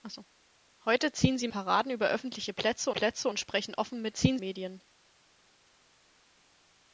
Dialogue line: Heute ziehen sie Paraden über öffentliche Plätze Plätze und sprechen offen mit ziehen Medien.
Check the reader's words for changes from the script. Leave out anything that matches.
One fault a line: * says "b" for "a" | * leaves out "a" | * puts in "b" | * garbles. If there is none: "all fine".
all fine